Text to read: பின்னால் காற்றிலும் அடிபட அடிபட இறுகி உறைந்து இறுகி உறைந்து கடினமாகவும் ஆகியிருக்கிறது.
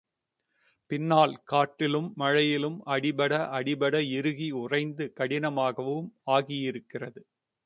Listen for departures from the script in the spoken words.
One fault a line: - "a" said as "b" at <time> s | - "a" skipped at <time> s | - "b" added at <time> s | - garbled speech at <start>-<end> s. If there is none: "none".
- "மழையிலும்" added at 2.1 s
- "இறுகி உறைந்து" skipped at 5.1 s